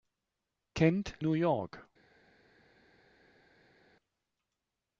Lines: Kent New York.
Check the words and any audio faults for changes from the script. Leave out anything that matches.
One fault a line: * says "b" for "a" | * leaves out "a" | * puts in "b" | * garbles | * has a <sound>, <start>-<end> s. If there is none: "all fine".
all fine